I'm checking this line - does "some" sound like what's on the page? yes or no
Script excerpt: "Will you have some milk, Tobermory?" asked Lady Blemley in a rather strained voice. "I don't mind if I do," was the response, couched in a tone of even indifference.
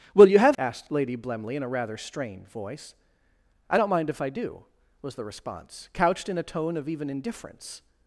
no